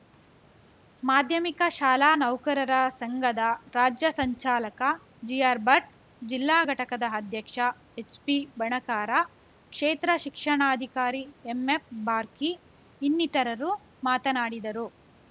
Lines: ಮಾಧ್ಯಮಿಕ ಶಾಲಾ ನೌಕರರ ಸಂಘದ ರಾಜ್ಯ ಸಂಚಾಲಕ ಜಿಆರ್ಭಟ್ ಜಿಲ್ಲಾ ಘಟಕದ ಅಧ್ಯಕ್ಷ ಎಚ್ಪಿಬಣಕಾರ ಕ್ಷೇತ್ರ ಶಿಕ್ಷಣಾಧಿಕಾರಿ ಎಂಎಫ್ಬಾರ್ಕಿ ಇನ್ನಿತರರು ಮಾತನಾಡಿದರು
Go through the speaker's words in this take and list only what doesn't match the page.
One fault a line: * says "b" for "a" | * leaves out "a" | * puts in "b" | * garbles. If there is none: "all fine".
all fine